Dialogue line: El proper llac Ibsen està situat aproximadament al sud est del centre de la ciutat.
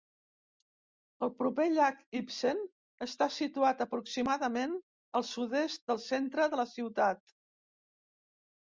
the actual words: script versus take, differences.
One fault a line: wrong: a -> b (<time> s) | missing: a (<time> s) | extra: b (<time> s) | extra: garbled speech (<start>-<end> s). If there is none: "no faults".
no faults